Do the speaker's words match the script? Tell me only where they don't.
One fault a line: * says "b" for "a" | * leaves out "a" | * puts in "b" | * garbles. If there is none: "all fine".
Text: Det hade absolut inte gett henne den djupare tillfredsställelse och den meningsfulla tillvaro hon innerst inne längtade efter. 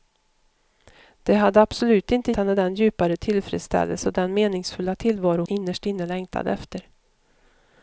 * leaves out "gett"
* leaves out "hon"